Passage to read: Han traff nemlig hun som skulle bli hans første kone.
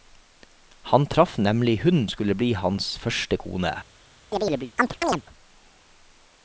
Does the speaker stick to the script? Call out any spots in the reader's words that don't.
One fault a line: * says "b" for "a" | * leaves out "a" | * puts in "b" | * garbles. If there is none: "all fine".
* leaves out "som"